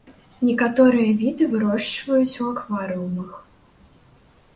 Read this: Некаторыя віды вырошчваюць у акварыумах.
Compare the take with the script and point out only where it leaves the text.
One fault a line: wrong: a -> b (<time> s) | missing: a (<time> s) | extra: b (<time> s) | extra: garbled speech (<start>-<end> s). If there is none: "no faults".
no faults